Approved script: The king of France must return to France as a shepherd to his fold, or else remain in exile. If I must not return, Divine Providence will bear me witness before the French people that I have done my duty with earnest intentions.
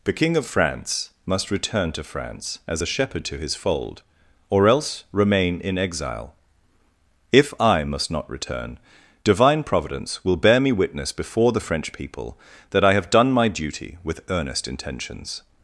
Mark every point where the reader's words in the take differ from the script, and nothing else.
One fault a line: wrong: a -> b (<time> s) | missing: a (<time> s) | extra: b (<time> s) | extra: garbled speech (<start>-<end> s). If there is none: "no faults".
no faults